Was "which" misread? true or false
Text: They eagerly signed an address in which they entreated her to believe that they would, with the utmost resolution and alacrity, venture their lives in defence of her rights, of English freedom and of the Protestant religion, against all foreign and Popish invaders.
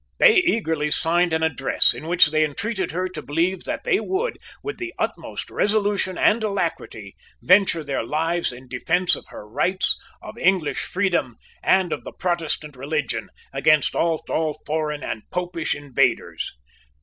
false